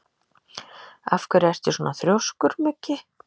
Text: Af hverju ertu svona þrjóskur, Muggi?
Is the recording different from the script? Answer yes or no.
no